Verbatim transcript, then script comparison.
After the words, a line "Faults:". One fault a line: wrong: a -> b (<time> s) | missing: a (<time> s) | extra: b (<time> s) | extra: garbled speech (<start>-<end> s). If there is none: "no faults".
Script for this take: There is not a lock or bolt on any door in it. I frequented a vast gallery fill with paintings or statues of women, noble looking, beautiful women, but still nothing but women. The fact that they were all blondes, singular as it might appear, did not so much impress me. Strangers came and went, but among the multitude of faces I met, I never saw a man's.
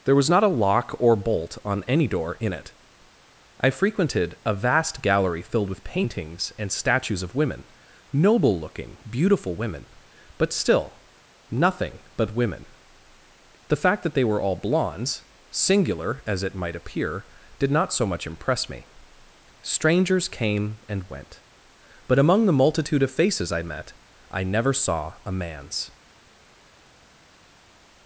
There was not a lock or bolt on any door in it. I frequented a vast gallery filled with paintings and statues of women, noble looking, beautiful women, but still nothing but women. The fact that they were all blondes, singular as it might appear, did not so much impress me. Strangers came and went, but among the multitude of faces I met, I never saw a man's.
Faults:
wrong: is -> was (0.1 s)
wrong: fill -> filled (5.4 s)
wrong: or -> and (6.6 s)